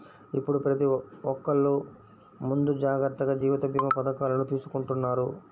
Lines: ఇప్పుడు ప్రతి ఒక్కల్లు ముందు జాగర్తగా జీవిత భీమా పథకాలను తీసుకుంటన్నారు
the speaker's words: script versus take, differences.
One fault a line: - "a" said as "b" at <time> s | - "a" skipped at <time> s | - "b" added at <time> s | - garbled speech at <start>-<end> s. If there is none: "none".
none